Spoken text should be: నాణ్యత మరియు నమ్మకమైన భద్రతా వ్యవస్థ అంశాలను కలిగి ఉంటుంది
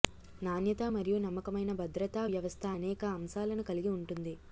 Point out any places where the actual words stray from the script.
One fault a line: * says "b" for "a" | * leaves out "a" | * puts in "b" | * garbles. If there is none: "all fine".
* puts in "అనేక"